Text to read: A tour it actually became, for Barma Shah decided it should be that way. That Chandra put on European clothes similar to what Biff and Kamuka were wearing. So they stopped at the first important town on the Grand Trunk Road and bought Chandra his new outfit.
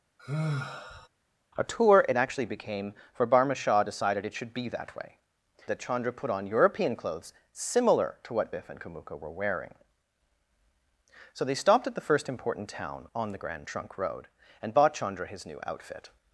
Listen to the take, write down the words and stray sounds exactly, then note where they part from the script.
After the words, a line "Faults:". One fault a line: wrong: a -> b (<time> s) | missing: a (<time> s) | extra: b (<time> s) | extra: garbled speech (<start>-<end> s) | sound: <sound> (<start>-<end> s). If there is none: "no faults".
A tour it actually became, for Barma Shah decided it should be that way. That Chandra put on European clothes similar to what Biff and Kamuka were wearing. So they stopped at the first important town on the Grand Trunk Road and bought Chandra his new outfit.
Faults:
sound: sigh (0.2-1.1 s)